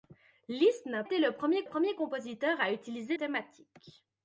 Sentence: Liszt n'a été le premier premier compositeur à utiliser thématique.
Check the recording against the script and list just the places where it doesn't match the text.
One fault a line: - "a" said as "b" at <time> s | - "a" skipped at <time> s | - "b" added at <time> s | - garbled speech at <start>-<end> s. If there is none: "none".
none